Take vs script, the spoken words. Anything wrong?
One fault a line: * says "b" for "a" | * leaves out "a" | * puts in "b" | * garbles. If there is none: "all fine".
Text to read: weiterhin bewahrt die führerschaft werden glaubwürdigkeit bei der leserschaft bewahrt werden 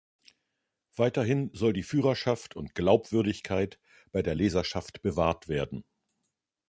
* says "soll" for "bewahrt"
* says "und" for "werden"